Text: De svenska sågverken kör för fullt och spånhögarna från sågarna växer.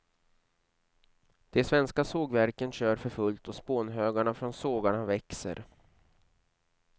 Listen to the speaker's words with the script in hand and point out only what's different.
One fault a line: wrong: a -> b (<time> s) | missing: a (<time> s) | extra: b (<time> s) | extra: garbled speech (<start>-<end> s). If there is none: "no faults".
no faults